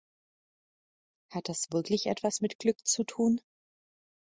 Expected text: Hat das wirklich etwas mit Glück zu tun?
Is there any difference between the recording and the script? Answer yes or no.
no